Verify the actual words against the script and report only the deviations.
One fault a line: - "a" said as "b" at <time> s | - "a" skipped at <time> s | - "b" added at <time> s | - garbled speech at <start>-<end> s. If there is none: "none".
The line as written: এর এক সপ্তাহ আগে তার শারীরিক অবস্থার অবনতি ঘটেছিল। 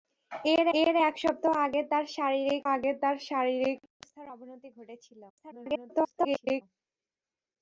- "এর" added at 0.8 s
- "আগে তার শারীরিক" added at 2.7 s
- garbled speech at 5.3-6.6 s